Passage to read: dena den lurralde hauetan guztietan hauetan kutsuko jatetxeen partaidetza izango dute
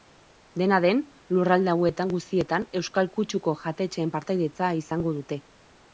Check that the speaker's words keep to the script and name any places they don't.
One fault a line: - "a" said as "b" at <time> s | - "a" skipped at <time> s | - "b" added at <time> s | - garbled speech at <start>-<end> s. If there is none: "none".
- "hauetan" said as "euskal" at 2.8 s